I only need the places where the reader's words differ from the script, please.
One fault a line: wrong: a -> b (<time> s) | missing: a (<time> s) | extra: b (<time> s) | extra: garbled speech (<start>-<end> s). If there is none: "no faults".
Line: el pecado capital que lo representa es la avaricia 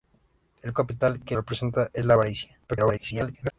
missing: pecado (0.7 s)
missing: lo (1.4 s)
extra: garbled speech (2.7-3.5 s)